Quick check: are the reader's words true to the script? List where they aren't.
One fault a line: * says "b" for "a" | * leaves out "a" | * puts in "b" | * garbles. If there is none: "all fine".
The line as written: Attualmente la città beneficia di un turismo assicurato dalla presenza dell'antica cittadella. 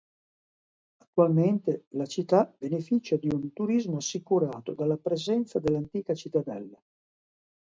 all fine